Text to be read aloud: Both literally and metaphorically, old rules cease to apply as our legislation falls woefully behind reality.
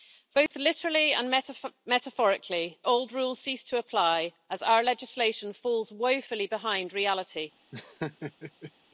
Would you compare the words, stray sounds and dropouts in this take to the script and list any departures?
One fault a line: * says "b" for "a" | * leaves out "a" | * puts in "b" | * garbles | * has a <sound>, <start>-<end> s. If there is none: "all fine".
* has a dropout, 0.5-0.5 s
* has a laugh, 7.7-8.7 s